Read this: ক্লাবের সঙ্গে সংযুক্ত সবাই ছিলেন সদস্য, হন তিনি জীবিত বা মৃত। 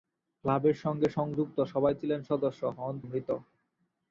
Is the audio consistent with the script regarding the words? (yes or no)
no